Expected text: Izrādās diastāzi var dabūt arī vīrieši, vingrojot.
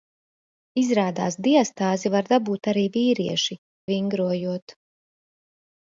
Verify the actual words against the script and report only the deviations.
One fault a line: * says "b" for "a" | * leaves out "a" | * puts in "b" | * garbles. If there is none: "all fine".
all fine